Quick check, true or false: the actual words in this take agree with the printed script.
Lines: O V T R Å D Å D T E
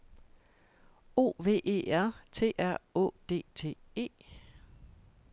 false